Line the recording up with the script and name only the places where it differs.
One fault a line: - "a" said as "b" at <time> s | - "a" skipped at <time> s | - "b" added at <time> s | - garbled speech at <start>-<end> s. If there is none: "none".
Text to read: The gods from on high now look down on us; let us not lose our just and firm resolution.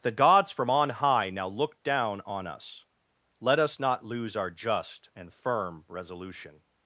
none